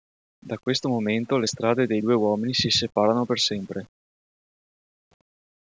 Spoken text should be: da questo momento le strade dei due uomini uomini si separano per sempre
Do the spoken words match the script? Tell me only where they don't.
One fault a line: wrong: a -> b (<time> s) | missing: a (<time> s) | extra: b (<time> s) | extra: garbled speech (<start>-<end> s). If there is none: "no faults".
missing: uomini (2.5 s)